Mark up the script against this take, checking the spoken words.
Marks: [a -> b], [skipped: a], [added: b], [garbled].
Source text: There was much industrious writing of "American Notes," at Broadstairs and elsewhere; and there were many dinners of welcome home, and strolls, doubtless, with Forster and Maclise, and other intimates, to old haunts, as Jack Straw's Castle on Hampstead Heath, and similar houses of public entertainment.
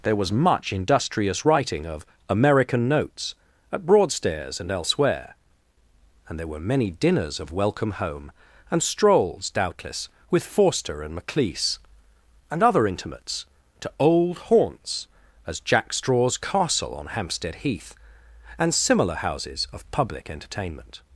There was much industrious writing of "American Notes," at Broadstairs and elsewhere; and there were many dinners of welcome home, and strolls, doubtless, with Forster and Maclise, and other intimates, to old haunts, as Jack Straw's Castle on Hampstead Heath, and similar houses of public entertainment.